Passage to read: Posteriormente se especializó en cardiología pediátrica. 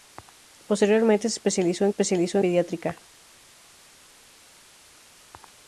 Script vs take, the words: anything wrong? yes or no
yes